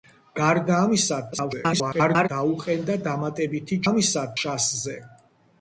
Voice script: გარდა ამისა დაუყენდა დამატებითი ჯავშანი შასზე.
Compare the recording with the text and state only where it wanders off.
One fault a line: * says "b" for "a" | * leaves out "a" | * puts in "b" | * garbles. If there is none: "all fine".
* garbles
* says "ამისა" for "ჯავშანი"